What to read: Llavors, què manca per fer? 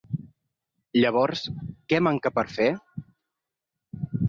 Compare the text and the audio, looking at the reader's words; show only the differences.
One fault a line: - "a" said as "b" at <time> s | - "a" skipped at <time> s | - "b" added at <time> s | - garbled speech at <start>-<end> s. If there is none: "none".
none